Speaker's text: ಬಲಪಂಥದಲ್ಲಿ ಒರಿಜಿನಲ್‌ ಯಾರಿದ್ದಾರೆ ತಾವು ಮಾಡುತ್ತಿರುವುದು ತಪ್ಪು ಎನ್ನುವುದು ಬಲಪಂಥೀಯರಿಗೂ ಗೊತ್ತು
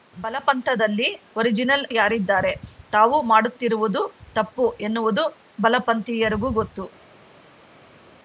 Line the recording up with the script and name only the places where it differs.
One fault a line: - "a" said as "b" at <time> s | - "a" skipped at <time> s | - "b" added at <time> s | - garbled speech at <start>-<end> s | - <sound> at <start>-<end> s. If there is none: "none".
none